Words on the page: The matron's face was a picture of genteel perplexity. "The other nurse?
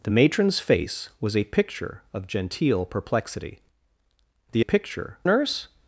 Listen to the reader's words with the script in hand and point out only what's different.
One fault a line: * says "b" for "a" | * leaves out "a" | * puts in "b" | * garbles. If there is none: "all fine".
* says "picture" for "other"